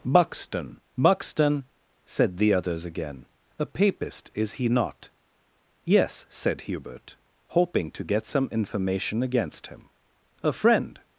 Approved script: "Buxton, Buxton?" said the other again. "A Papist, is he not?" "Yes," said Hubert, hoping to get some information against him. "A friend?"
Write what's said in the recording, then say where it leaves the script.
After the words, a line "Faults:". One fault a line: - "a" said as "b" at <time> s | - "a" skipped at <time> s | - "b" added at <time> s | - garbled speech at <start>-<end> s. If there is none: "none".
"Buxton, Buxton?" said the others again. "A Papist, is he not?" "Yes," said Hubert, hoping to get some information against him. "A friend?"
Faults:
- "other" said as "others" at 2.5 s